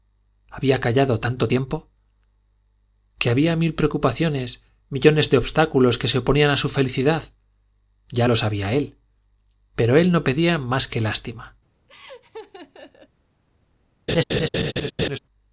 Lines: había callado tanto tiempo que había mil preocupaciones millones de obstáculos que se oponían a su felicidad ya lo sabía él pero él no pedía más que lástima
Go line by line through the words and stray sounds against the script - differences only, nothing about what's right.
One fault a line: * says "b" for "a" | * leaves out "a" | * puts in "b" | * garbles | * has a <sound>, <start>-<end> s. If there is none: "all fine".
* has a laugh, 11.9-13.1 s
* has a laugh, 14.1-15.2 s